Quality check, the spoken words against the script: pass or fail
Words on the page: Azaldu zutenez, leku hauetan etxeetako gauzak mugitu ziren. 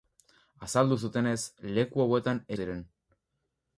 fail